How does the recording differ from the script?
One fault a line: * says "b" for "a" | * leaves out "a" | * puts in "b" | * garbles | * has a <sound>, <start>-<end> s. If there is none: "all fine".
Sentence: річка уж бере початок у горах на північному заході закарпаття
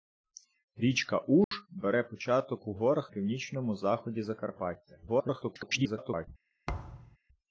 * has a dropout, 1.4-1.5 s
* leaves out "на"
* garbles
* has a thud, 6.7-7.2 s